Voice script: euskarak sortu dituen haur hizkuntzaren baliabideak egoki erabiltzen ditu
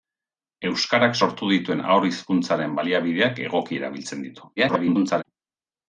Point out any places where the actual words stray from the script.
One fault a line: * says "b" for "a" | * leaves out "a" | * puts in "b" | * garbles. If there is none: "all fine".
* garbles